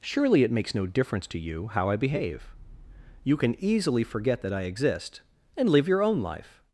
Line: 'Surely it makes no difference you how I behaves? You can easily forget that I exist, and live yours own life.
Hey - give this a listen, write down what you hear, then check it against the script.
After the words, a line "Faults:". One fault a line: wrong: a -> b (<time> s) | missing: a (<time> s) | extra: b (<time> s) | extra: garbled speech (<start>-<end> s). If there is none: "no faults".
'Surely it makes no difference to you how I behave? You can easily forget that I exist, and live your own life.
Faults:
extra: to (1.3 s)
wrong: behaves -> behave (1.9 s)
wrong: yours -> your (5.9 s)